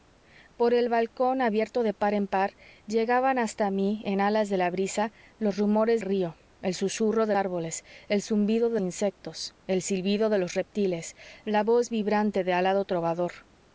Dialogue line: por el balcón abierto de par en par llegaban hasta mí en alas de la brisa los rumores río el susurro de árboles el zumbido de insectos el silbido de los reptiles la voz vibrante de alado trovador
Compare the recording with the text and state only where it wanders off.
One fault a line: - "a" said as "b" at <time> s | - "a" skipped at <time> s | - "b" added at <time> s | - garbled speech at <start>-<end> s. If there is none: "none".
none